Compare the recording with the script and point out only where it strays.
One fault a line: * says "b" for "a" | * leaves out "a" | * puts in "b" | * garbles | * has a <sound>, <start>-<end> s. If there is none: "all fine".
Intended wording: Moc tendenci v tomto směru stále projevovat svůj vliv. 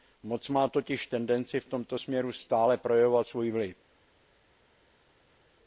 * puts in "má totiž"